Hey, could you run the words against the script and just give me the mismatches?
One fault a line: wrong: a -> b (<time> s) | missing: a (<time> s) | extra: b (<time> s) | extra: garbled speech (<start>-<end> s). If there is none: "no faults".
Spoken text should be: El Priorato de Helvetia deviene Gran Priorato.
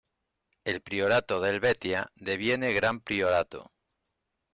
no faults